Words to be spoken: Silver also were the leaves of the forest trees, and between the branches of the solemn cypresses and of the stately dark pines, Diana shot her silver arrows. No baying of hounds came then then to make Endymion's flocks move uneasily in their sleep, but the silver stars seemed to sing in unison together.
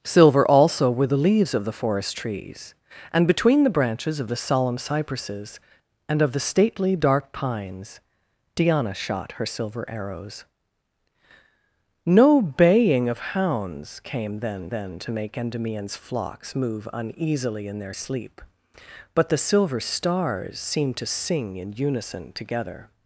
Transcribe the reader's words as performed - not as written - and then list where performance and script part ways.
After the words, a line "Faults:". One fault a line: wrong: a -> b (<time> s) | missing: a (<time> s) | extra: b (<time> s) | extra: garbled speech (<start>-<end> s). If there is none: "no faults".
Silver also were the leaves of the forest trees, and between the branches of the solemn cypresses and of the stately dark pines, Diana shot her silver arrows. No baying of hounds came then then to make Endymion's flocks move uneasily in their sleep, but the silver stars seemed to sing in unison together.
Faults:
no faults